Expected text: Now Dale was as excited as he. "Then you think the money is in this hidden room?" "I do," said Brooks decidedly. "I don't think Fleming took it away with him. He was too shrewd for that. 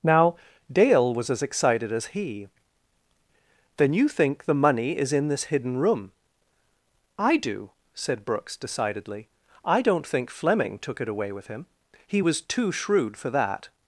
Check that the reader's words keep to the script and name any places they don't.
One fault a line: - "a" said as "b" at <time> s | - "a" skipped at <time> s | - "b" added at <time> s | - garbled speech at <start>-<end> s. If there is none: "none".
none